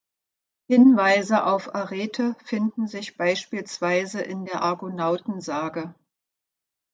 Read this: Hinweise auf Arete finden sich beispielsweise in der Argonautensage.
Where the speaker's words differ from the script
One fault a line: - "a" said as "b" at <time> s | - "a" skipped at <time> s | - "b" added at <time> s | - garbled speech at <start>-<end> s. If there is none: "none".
none